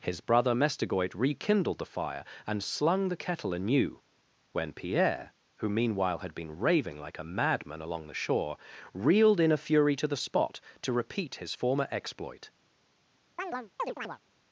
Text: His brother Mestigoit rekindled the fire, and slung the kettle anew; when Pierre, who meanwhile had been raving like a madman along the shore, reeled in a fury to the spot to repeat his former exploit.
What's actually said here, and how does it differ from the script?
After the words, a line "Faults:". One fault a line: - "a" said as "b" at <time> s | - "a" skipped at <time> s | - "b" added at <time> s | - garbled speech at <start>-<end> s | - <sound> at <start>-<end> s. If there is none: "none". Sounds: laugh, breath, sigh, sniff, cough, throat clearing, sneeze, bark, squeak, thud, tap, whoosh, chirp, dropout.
His brother Mestigoit rekindled the fire, and slung the kettle anew; when Pierre, who meanwhile had been raving like a madman along the shore, reeled in a fury to the spot to repeat his former exploit.
Faults:
- chirp at 13.4-14.2 s